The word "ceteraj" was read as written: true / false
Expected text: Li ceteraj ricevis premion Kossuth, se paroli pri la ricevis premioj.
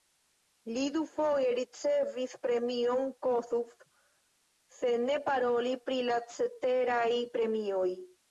false